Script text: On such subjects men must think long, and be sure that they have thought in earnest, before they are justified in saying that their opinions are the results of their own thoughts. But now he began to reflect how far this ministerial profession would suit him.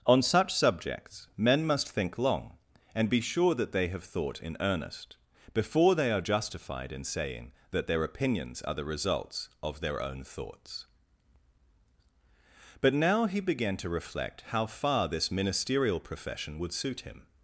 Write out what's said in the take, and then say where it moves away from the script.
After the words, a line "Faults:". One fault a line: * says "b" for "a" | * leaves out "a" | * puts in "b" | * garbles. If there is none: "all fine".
On such subjects men must think long, and be sure that they have thought in earnest, before they are justified in saying that their opinions are the results of their own thoughts. But now he began to reflect how far this ministerial profession would suit him.
Faults:
all fine